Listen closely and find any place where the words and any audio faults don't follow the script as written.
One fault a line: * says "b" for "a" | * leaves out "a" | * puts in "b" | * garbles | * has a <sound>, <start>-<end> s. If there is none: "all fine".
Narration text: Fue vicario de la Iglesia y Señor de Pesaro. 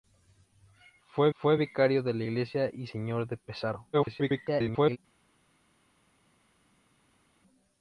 * puts in "fue"
* garbles